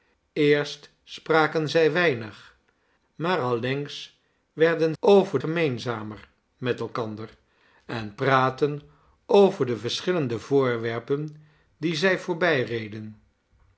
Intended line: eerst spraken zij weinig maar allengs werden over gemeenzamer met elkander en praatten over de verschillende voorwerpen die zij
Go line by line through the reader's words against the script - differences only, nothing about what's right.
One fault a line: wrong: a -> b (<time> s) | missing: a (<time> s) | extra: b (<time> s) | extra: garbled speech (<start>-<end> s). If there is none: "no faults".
no faults